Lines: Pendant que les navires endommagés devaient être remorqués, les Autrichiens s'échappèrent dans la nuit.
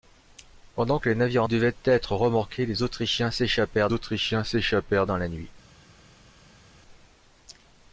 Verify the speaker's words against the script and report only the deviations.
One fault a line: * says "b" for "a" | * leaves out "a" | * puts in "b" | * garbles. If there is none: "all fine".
* leaves out "endommagés"
* puts in "Autrichiens s'échappèrent"